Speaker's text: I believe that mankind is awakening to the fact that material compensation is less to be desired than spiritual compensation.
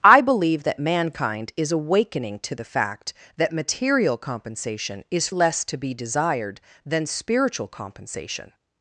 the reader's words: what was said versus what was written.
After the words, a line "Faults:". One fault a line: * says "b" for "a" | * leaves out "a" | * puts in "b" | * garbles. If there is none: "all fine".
I believe that mankind is awakening to the fact that material compensation is less to be desired than spiritual compensation.
Faults:
all fine